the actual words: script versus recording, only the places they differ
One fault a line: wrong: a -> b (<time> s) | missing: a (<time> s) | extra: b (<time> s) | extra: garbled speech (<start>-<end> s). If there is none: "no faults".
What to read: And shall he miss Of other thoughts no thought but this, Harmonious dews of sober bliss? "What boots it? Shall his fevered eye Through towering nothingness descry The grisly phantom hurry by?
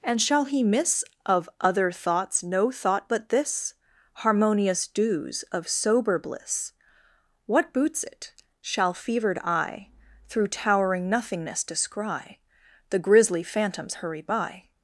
missing: his (8.9 s)
wrong: phantom -> phantoms (13.4 s)